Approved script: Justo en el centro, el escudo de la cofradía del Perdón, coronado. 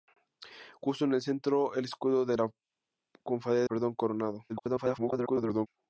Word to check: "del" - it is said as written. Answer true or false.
false